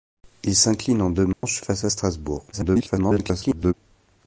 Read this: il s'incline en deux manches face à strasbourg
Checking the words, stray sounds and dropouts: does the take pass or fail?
fail